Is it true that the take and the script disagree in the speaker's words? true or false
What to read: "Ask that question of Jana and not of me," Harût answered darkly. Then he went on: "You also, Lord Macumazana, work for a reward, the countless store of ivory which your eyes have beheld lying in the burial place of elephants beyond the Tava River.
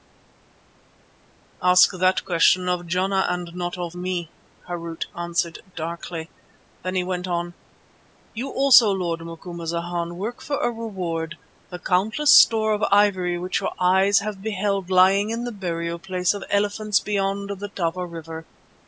false